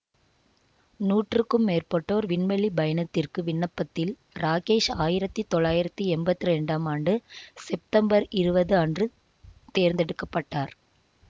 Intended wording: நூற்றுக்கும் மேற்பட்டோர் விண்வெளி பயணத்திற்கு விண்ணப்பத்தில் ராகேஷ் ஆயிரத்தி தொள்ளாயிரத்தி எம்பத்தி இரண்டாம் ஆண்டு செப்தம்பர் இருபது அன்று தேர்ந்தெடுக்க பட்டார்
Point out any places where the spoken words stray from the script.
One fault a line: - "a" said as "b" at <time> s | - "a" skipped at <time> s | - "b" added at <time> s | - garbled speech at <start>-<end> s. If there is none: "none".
none